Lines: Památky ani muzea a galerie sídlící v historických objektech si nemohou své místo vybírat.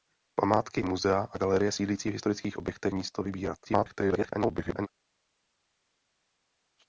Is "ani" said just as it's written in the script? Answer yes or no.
no